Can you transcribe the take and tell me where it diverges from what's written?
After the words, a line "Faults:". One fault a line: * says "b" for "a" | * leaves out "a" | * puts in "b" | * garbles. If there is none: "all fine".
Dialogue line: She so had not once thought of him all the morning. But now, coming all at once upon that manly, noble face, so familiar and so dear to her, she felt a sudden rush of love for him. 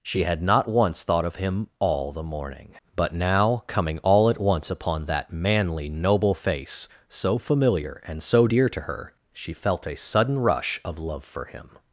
She had not once thought of him all the morning. But now, coming all at once upon that manly, noble face, so familiar and so dear to her, she felt a sudden rush of love for him.
Faults:
* leaves out "so"